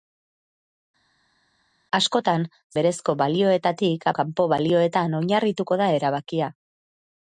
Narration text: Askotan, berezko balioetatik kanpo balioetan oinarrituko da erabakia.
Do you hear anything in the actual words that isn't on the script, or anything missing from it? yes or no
no